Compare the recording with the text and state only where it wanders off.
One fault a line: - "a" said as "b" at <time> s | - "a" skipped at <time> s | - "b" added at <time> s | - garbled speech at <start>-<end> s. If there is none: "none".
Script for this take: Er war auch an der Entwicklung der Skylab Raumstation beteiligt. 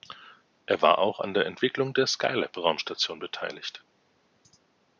none